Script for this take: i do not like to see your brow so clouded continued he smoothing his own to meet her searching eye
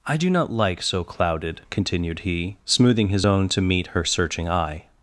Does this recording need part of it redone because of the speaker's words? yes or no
yes